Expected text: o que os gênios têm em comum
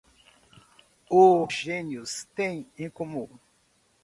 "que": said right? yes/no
no